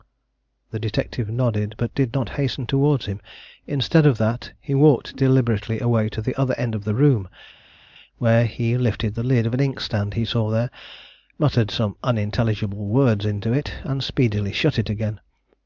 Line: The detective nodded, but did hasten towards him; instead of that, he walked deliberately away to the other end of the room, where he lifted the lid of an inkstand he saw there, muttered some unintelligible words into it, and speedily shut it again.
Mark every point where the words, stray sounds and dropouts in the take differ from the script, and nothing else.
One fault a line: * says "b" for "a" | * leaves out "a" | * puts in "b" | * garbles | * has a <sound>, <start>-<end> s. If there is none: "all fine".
* puts in "not"